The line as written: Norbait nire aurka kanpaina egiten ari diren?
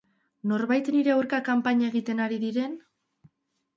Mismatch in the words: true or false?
false